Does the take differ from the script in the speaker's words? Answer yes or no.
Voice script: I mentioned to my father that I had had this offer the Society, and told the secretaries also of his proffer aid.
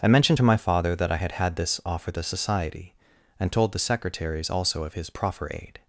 no